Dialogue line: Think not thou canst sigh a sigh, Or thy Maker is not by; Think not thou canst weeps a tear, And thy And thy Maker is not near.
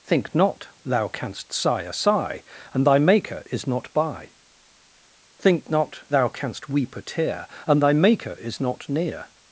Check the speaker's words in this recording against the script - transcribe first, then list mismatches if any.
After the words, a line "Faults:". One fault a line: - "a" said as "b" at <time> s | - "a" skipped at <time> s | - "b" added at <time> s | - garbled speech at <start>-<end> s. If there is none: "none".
Think not thou canst sigh a sigh, And thy Maker is not by; Think not thou canst weep a tear, And thy Maker is not near.
Faults:
- "Or" said as "And" at 2.7 s
- "weeps" said as "weep" at 6.7 s
- "And thy" skipped at 7.9 s